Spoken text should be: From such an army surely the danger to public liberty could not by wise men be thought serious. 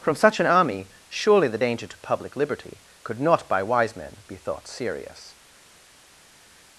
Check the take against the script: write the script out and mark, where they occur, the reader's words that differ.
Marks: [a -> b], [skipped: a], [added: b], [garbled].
From such an army surely the danger to public liberty could not by wise men be thought serious.